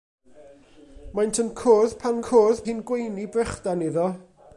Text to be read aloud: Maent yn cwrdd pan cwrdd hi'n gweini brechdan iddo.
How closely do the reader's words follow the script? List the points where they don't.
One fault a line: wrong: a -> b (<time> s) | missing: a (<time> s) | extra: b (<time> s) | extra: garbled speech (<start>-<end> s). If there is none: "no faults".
no faults